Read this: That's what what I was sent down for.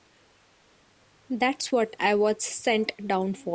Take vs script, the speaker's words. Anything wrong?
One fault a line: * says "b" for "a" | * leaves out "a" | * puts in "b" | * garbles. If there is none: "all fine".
* leaves out "what"